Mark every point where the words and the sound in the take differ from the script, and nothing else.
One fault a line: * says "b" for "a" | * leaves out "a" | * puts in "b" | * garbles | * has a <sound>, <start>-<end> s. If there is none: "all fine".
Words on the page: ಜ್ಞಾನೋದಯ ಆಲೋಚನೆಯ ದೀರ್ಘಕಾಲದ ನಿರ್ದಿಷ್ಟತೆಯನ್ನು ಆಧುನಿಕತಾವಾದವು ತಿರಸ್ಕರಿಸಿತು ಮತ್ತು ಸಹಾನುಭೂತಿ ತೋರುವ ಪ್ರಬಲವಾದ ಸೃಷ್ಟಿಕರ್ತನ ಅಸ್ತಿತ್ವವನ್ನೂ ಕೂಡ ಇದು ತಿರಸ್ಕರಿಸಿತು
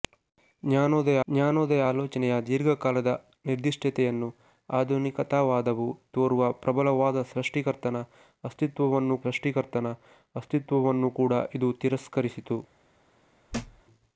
* puts in "ಜ್ಞಾನೋದಯ"
* says "ತೋರುವ ಪ್ರಬಲವಾದ ಸೃಷ್ಟಿಕರ್ತನ ಅಸ್ತಿತ್ವವನ್ನೂ" for "ತಿರಸ್ಕರಿಸಿತು ಮತ್ತು ಸಹಾನುಭೂತಿ ತೋರುವ ಪ್ರಬಲವಾದ"
* has a thud, 13.5-13.8 s